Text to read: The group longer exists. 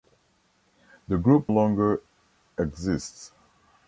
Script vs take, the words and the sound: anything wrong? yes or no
no